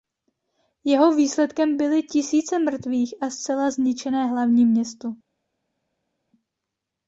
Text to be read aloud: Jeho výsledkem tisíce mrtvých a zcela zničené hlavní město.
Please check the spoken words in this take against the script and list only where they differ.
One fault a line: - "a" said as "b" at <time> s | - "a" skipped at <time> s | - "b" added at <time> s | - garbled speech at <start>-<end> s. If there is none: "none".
- "byly" added at 1.8 s